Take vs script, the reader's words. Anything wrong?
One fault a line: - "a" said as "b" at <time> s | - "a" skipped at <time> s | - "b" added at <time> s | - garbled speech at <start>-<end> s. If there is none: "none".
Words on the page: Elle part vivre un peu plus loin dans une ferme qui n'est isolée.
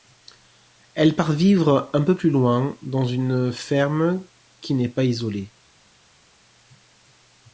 - "pas" added at 4.9 s